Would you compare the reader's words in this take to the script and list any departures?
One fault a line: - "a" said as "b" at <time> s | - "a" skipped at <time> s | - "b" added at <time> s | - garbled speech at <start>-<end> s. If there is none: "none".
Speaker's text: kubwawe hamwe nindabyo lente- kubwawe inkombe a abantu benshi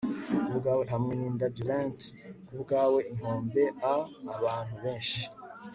none